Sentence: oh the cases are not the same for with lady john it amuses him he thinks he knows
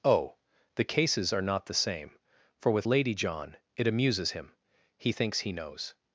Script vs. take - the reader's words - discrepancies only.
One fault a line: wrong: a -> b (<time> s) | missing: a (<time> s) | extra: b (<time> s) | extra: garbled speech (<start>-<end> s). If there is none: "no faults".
no faults